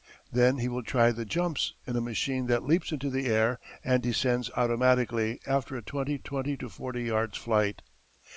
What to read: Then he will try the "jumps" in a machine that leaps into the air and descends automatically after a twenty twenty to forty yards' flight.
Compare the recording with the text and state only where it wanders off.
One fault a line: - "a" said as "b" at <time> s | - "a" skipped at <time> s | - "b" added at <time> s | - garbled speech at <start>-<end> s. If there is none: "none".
none